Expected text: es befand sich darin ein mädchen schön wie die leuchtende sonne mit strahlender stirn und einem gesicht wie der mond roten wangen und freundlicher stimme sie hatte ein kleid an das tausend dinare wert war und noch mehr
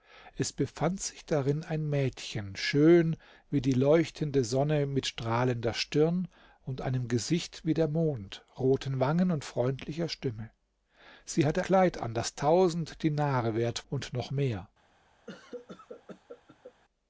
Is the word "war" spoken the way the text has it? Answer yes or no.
no